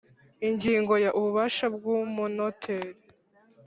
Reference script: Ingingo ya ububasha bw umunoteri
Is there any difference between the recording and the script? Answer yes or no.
no